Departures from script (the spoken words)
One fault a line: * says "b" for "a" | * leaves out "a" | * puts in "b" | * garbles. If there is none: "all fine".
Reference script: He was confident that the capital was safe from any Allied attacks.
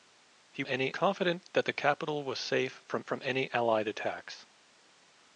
* says "any" for "was"
* puts in "from"